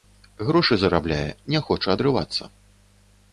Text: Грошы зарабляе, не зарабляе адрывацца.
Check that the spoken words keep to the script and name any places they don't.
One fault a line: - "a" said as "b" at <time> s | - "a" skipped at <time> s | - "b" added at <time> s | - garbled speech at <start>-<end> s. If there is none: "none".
- "зарабляе" said as "хоча" at 1.7 s